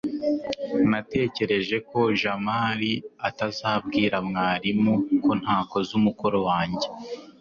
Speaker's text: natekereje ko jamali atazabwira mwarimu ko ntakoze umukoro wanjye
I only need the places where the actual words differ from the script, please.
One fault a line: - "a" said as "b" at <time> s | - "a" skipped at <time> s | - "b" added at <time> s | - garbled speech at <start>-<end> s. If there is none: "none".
none